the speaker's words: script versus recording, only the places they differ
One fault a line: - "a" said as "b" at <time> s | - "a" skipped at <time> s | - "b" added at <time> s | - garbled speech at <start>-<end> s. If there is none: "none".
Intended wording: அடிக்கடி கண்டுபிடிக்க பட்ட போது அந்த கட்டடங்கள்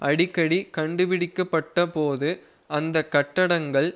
none